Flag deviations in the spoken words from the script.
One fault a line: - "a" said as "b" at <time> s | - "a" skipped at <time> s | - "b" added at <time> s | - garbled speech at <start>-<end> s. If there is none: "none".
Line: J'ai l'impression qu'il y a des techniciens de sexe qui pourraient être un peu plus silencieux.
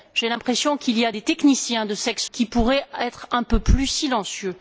none